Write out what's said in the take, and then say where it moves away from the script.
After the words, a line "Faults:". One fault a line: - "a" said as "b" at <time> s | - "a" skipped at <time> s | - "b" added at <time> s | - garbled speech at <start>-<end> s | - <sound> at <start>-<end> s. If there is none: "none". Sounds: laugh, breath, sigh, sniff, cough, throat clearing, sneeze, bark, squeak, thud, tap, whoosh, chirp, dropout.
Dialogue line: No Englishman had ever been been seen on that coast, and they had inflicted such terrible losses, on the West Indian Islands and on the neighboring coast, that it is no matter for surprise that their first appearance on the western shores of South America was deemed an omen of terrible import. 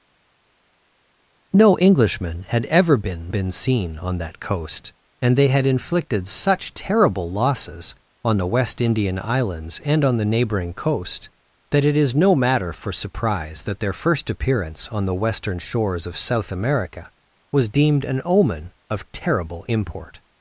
No Englishman had ever been been seen on that coast, and they had inflicted such terrible losses, on the West Indian Islands and on the neighboring coast, that it is no matter for surprise that their first appearance on the western shores of South America was deemed an omen of terrible import.
Faults:
none